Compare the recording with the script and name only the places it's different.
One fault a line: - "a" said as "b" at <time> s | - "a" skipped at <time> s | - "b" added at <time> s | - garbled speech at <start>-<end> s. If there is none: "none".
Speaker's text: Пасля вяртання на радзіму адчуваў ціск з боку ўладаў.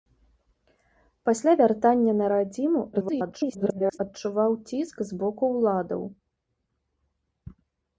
- garbled speech at 2.9-4.0 s